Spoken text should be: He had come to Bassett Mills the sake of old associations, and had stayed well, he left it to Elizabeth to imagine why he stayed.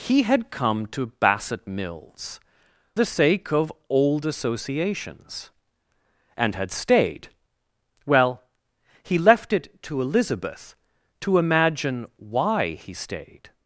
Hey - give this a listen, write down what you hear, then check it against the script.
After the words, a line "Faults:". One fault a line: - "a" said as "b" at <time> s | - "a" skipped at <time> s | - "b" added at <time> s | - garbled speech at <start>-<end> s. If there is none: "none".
He had come to Bassett Mills the sake of old associations, and had stayed well, he left it to Elizabeth to imagine why he stayed.
Faults:
none